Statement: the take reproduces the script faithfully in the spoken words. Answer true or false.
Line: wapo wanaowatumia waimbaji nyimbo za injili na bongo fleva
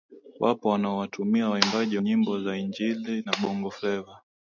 true